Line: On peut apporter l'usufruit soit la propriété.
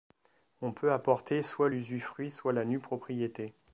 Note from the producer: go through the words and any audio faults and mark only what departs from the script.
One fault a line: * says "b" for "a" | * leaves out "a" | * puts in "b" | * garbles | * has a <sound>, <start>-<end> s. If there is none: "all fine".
* puts in "soit"
* puts in "nue"